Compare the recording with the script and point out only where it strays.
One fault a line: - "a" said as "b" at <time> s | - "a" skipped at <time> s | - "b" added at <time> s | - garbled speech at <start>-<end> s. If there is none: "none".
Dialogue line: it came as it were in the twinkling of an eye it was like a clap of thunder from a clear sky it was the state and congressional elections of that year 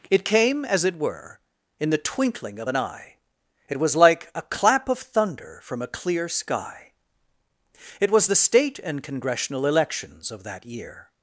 none